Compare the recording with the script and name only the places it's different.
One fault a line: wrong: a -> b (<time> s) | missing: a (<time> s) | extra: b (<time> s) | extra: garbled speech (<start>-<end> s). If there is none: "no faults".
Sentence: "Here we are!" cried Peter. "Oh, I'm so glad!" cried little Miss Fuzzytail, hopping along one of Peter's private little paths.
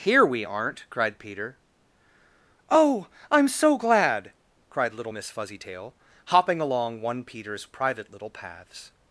wrong: are -> aren't (0.4 s)
missing: of (7.2 s)